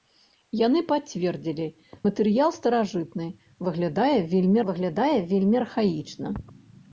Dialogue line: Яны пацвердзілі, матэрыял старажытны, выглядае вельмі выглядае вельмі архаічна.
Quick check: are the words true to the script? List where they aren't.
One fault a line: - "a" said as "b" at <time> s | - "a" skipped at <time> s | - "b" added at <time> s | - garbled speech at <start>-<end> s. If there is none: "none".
none